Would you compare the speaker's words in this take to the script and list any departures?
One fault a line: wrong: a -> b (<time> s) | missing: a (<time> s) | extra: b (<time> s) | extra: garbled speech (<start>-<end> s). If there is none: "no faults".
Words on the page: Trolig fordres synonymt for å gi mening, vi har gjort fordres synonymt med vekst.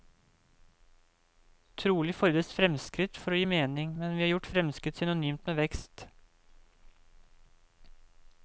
wrong: synonymt -> fremskritt (2.5 s)
extra: men (4.0 s)
wrong: fordres -> fremskritt (4.5 s)